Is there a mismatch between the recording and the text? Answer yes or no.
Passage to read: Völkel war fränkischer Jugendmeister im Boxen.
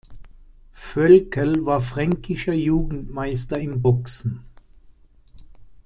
no